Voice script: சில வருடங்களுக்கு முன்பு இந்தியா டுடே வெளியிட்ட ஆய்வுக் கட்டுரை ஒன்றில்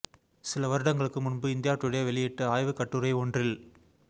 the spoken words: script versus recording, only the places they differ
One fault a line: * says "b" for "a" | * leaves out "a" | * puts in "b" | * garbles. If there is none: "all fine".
all fine